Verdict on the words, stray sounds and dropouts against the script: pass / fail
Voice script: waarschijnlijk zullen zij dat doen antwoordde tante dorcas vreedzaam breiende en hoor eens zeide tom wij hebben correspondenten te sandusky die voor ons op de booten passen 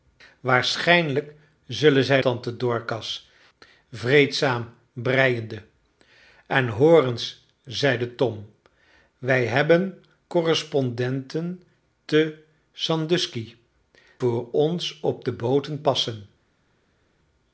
fail